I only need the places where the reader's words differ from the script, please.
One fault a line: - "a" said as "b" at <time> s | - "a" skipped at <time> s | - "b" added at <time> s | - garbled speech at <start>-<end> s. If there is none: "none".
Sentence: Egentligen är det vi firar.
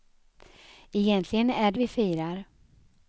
none